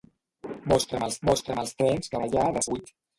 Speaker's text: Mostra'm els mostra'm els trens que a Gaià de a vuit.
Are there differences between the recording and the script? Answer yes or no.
no